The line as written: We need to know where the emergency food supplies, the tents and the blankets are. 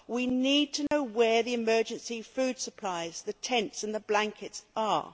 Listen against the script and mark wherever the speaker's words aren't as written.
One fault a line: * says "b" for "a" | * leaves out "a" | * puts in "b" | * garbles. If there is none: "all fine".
all fine